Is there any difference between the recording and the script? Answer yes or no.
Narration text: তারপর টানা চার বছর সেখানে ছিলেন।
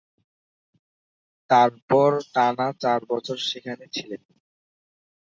no